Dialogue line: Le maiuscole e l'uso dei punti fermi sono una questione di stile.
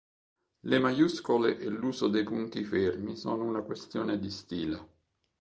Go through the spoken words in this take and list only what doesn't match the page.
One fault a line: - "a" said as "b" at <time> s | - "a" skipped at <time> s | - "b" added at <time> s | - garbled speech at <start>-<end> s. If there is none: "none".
none